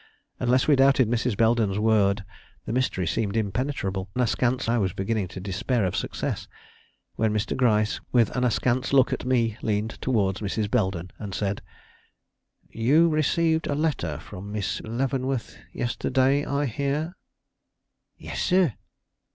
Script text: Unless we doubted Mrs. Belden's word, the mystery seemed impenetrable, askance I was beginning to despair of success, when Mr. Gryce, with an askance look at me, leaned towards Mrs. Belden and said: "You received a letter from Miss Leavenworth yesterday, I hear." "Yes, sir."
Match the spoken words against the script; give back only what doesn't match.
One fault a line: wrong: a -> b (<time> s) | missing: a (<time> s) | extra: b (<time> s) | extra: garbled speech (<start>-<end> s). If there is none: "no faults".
no faults